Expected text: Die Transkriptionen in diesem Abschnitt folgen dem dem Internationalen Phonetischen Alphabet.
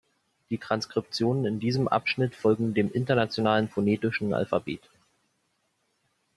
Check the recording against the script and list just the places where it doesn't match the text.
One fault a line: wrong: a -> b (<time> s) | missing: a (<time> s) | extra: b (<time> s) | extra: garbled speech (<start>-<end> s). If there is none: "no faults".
missing: dem (2.9 s)